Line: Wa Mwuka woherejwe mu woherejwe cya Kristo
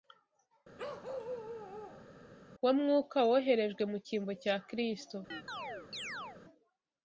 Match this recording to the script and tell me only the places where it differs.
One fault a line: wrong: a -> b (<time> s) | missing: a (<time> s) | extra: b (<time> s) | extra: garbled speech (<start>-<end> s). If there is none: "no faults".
wrong: woherejwe -> cyimbo (4.1 s)